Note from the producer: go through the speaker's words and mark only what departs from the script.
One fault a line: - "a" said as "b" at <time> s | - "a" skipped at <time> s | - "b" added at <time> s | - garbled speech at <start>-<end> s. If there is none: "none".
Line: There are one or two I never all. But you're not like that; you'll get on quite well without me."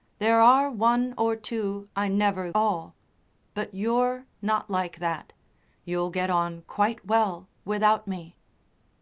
none